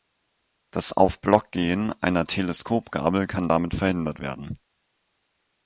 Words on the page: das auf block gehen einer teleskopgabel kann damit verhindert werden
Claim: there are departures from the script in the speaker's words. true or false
false